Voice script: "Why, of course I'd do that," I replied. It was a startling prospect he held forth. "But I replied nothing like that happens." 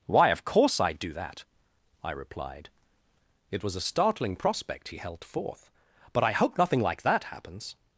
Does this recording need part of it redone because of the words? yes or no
yes